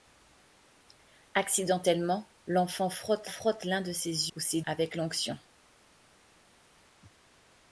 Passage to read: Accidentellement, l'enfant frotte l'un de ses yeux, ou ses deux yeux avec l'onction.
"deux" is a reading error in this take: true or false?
true